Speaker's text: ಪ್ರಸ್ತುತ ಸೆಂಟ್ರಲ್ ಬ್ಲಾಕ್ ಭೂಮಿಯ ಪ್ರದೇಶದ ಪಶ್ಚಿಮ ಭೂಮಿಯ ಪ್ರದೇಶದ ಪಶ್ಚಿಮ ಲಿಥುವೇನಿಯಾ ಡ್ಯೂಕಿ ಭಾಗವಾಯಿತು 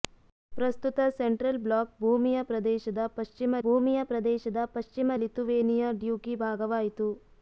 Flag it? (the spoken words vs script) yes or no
no